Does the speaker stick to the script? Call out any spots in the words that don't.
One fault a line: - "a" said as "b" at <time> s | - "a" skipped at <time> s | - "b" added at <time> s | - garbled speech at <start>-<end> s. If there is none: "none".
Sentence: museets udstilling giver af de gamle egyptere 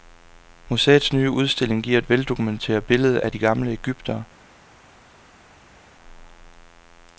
- "nye" added at 1.1 s
- "et veldokumenteret billede" added at 2.0 s